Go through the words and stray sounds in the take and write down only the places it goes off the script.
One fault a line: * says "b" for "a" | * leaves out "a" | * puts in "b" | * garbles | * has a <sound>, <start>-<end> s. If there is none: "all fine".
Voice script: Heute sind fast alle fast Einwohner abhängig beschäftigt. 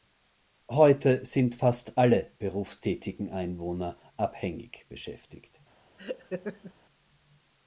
* says "berufstätigen" for "fast"
* has a laugh, 6.0-6.7 s